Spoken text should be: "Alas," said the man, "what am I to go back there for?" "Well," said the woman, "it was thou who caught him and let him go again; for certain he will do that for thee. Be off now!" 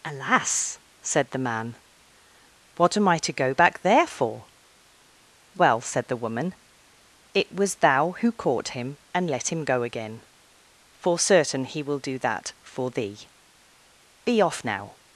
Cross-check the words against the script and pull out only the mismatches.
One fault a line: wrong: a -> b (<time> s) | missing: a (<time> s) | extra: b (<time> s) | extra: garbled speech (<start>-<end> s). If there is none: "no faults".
no faults